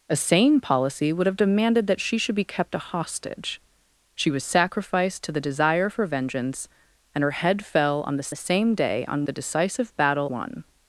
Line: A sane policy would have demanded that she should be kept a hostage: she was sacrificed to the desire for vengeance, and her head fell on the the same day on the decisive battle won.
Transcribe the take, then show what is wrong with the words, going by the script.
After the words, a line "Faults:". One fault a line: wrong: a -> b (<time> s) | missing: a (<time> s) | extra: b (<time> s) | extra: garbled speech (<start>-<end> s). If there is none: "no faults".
A sane policy would have demanded that she should be kept a hostage: she was sacrificed to the desire for vengeance, and her head fell on the the same day on the decisive battle won.
Faults:
no faults